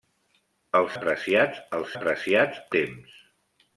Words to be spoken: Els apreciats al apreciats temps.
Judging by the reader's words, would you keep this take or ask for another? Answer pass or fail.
pass